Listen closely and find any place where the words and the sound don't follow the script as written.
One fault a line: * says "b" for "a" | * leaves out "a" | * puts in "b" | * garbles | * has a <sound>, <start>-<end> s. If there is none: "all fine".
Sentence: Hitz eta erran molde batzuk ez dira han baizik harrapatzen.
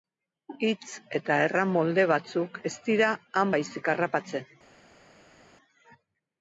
all fine